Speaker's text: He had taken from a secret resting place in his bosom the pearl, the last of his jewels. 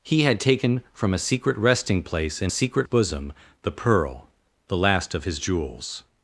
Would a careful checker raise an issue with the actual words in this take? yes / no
yes